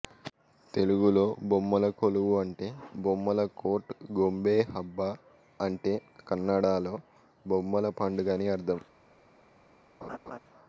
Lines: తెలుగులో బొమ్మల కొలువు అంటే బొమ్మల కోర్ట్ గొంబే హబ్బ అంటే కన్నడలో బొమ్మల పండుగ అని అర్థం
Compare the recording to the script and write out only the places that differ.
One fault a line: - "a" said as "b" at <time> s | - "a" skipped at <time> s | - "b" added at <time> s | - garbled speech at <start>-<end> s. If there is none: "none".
none